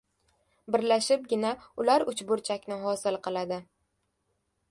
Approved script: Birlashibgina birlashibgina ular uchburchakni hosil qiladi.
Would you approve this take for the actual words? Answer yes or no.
no